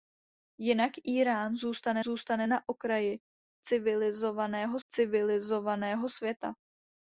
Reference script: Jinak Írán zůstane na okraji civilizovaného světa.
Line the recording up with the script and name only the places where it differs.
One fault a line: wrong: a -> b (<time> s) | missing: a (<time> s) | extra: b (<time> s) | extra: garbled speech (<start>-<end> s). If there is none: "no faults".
extra: zůstane (2.0 s)
extra: civilizovaného (4.9 s)